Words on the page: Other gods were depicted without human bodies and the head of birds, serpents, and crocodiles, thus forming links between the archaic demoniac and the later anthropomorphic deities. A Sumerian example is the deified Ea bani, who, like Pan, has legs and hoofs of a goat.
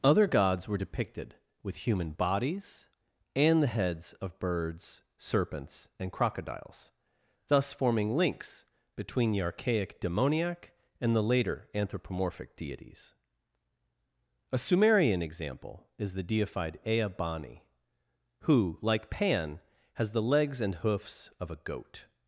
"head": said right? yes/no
no